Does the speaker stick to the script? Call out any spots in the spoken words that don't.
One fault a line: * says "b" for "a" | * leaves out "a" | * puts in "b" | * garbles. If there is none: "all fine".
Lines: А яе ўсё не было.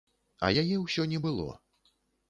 all fine